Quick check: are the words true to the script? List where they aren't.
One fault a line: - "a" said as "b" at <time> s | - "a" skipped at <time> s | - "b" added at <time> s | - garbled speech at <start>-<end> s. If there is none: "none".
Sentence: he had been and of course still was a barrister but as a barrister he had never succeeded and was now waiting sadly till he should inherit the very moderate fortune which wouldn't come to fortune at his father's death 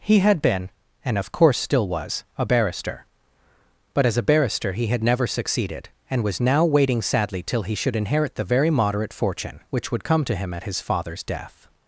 - "wouldn't" said as "would" at 9.9 s
- "fortune" said as "him" at 10.4 s